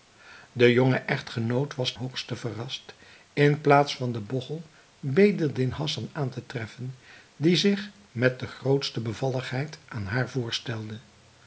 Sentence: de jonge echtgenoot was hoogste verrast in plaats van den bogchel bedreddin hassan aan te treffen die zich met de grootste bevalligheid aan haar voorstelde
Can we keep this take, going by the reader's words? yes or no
yes